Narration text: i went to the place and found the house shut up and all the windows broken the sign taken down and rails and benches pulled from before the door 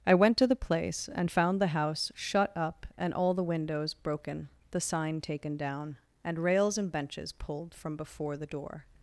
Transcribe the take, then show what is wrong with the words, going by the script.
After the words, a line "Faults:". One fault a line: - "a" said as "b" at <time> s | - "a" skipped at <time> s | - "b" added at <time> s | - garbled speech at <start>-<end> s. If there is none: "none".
i went to the place and found the house shut up and all the windows broken the sign taken down and rails and benches pulled from before the door
Faults:
none